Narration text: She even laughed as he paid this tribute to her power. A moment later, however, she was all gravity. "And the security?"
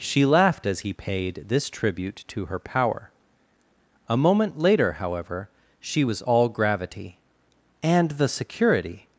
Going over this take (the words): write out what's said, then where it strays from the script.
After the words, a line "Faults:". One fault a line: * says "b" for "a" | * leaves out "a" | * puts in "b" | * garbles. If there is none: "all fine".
She laughed as he paid this tribute to her power. A moment later, however, she was all gravity. "And the security?"
Faults:
* leaves out "even"